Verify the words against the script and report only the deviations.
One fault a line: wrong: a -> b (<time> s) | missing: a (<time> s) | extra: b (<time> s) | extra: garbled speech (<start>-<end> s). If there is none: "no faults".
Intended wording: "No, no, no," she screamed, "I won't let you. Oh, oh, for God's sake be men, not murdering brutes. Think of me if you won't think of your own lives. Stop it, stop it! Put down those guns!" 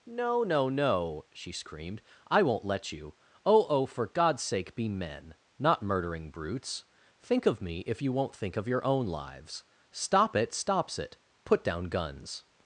wrong: stop -> stops (10.5 s)
missing: those (11.8 s)